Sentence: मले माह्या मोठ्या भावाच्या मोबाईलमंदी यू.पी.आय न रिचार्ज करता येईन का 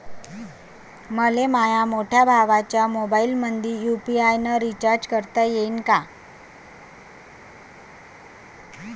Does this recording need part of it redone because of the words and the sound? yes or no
no